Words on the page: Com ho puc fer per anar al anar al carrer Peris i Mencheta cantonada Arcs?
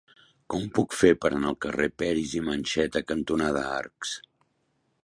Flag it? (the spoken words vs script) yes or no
yes